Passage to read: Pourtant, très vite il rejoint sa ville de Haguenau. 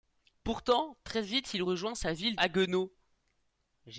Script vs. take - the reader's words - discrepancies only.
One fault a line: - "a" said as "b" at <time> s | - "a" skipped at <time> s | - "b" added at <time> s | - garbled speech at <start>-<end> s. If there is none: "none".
- "de" skipped at 2.4 s